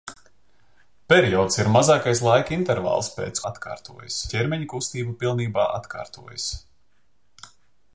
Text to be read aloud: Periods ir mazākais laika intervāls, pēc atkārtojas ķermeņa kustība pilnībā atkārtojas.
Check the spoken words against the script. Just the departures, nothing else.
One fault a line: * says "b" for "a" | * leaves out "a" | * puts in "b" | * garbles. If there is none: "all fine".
all fine